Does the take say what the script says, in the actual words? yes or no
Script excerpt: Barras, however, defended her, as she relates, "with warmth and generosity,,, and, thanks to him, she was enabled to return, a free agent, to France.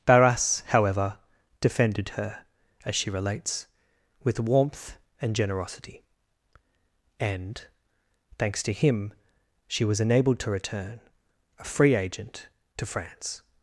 yes